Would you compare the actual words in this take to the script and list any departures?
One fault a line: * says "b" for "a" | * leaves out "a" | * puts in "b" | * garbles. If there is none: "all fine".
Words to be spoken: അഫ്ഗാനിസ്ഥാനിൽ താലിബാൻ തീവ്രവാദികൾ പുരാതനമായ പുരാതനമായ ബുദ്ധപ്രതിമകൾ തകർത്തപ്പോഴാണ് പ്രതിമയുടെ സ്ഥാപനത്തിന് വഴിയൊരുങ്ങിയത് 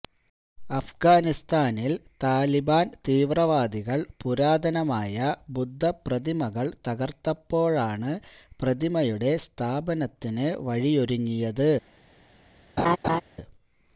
* leaves out "പുരാതനമായ"